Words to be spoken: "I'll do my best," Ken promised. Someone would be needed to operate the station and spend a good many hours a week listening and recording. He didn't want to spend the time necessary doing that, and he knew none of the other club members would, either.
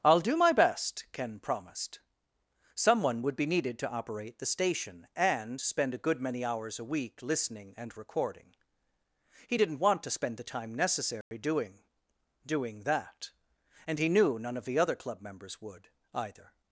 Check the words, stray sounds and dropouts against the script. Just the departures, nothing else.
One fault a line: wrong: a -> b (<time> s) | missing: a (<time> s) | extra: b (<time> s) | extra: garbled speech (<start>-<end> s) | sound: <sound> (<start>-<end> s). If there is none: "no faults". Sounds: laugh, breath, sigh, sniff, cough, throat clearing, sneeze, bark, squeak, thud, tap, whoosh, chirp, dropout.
sound: dropout (11.2-11.3 s)
extra: doing (12.5 s)